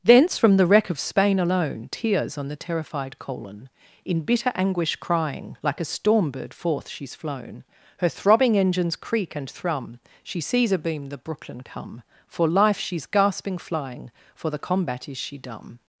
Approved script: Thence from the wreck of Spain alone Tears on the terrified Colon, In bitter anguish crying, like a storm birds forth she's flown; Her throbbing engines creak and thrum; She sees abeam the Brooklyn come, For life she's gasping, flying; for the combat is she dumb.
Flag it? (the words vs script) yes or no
yes